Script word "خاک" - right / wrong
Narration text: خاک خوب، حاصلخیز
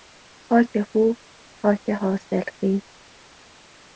right